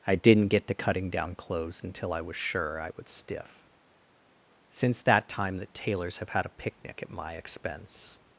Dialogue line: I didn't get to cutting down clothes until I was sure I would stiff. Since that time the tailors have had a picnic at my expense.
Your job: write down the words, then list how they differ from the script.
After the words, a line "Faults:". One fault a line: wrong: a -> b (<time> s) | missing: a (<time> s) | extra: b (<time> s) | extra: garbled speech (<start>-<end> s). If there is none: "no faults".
I didn't get to cutting down clothes until I was sure I would stiff. Since that time the tailors have had a picnic at my expense.
Faults:
no faults